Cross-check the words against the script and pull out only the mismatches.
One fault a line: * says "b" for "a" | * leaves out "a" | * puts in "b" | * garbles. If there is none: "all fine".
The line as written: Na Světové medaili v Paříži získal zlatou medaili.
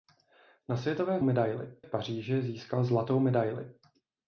all fine